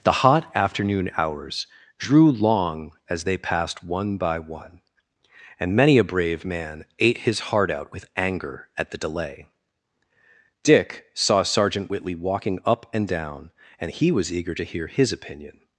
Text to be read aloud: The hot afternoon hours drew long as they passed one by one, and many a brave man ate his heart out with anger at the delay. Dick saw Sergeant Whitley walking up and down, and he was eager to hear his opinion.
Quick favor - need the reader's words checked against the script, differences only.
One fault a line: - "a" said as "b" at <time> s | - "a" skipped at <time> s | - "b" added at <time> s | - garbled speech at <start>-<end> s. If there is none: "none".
none